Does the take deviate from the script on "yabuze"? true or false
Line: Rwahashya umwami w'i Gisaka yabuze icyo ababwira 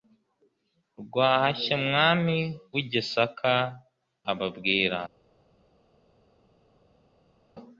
true